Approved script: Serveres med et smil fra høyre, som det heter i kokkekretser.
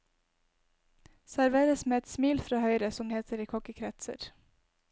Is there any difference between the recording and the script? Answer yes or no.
yes